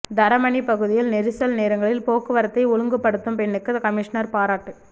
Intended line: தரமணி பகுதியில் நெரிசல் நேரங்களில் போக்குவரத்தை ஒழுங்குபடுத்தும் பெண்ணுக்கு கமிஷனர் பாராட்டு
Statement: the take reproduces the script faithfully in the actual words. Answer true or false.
true